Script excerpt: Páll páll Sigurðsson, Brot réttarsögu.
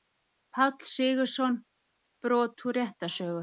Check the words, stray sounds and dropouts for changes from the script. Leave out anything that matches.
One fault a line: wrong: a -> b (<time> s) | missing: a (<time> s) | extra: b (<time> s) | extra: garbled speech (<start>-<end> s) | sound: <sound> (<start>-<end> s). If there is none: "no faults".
missing: páll (0.9 s)
extra: úr (2.6 s)